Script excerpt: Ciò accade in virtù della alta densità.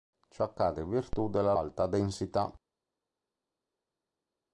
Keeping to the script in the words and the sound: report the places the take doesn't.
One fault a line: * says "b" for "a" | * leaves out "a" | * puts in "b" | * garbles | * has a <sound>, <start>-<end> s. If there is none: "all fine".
all fine